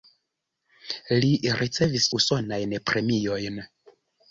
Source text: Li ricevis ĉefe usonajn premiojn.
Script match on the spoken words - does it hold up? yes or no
no